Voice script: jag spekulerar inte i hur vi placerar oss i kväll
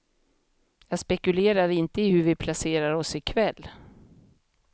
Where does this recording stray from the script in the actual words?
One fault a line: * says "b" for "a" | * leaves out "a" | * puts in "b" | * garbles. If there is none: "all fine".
all fine